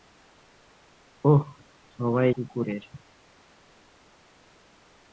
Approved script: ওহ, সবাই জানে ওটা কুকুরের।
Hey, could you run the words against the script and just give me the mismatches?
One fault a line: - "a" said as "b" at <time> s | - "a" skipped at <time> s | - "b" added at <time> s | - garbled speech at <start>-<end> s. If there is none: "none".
- "জানে ওটা" skipped at 2.3 s